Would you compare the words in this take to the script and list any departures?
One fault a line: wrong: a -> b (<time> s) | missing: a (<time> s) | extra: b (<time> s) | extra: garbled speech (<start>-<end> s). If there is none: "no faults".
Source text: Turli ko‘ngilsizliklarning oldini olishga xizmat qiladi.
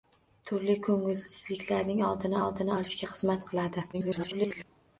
extra: oldini (2.4 s)
extra: garbled speech (3.9-4.6 s)